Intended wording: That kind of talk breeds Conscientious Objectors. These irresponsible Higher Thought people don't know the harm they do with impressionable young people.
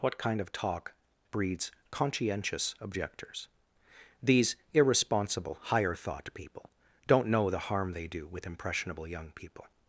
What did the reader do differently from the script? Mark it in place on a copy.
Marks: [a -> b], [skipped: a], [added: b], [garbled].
[That -> What] kind of talk breeds Conscientious Objectors. These irresponsible Higher Thought people don't know the harm they do with impressionable young people.